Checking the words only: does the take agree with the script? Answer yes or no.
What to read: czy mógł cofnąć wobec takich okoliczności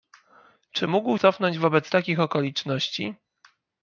yes